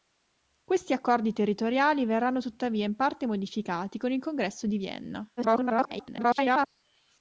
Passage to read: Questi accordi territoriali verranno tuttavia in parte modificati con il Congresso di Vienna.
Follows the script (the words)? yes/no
no